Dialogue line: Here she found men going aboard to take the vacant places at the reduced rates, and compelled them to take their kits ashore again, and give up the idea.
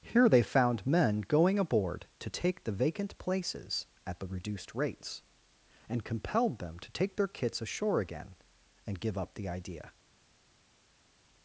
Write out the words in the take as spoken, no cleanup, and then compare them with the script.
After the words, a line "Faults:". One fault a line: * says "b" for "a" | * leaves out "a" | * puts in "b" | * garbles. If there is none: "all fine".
Here they found men going aboard to take the vacant places at the reduced rates, and compelled them to take their kits ashore again, and give up the idea.
Faults:
* says "they" for "she"